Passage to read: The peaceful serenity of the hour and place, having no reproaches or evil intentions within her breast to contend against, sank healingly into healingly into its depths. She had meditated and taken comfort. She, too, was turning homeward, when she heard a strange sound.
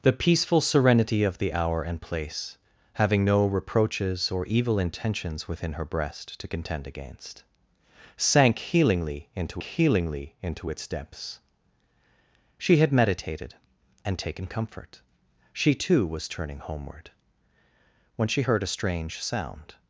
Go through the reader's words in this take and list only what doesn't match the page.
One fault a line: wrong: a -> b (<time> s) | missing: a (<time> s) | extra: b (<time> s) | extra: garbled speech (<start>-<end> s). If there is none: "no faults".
no faults